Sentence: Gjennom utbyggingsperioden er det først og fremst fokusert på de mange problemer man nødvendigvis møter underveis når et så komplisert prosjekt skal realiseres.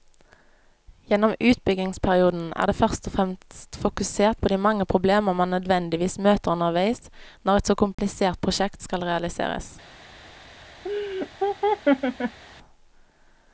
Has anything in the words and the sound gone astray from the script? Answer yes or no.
yes